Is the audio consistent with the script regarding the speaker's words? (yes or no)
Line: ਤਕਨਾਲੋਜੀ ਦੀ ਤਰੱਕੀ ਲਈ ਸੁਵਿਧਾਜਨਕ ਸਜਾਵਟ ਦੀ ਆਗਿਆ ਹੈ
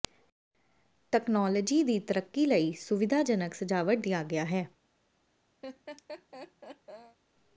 yes